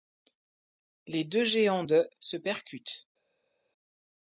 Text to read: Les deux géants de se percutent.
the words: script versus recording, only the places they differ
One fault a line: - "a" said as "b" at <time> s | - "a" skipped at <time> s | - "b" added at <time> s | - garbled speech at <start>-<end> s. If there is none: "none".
none